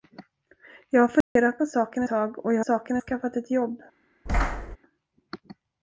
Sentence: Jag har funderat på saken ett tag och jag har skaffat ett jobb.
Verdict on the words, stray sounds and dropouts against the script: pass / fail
fail